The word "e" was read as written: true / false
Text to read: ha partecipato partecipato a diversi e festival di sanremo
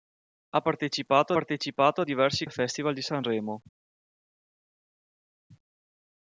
true